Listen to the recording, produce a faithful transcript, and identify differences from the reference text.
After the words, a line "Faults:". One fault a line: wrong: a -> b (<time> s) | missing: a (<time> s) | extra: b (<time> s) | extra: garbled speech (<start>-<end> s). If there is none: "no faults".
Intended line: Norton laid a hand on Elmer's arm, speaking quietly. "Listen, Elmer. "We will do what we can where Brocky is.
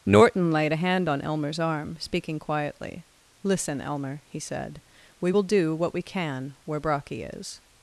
Norton laid a hand on Elmer's arm, speaking quietly. "Listen, Elmer," he said. "We will do what we can where Brocky is.
Faults:
extra: he said (4.3 s)